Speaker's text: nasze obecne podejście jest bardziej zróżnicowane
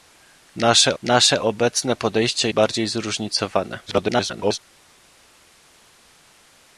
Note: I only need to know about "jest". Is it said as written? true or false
false